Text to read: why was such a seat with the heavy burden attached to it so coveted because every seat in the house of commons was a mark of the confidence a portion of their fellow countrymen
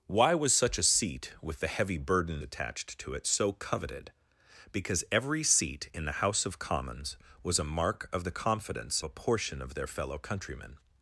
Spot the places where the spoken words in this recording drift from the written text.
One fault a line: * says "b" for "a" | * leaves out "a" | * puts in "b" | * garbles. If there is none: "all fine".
all fine